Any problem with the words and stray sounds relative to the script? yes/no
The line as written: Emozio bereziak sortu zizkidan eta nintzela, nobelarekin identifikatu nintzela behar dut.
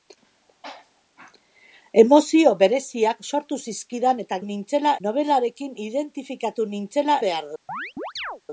yes